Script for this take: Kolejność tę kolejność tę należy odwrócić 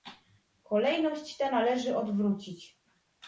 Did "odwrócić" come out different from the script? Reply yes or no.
no